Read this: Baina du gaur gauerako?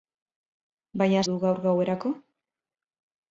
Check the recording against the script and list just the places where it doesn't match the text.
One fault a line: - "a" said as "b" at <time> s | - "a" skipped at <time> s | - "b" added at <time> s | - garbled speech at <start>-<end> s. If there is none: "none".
none